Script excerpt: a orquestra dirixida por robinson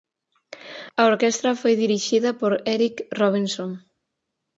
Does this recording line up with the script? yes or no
no